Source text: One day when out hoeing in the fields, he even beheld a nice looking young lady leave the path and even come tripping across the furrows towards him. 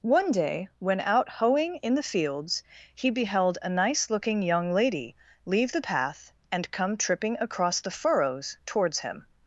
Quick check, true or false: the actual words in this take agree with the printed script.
false